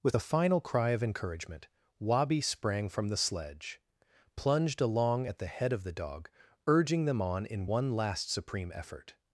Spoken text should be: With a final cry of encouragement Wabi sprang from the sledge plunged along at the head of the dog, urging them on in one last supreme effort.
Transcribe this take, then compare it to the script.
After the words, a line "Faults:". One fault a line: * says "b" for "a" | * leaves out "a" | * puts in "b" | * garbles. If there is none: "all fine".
With a final cry of encouragement Wabi sprang from the sledge plunged along at the head of the dog, urging them on in one last supreme effort.
Faults:
all fine